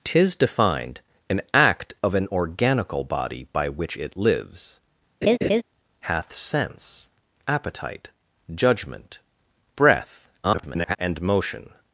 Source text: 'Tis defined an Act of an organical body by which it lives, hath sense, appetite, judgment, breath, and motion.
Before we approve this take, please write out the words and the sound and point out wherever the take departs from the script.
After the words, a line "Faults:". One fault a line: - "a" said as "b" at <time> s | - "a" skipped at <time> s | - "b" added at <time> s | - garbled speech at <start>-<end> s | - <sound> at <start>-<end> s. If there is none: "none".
'Tis defined an Act of an organical body by which it lives, hath sense, appetite, judgment, breath, [garbled] and motion.
Faults:
- laugh at 5.2-5.6 s
- garbled speech at 10.4-11.0 s